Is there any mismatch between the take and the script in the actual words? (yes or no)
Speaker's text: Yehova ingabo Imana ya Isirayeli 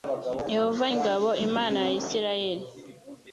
no